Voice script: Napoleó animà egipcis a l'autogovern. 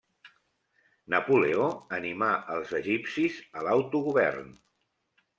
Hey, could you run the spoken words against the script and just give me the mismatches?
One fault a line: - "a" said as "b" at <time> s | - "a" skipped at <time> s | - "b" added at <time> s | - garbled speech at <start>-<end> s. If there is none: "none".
- "els" added at 2.6 s